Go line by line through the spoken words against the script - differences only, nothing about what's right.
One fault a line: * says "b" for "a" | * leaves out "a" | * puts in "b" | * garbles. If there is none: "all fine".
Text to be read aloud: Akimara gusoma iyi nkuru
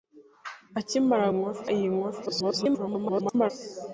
* says "nkuru" for "gusoma"
* garbles